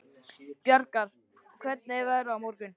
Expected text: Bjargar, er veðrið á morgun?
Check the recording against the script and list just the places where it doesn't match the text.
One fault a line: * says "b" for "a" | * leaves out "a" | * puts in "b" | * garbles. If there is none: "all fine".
* puts in "hvernig"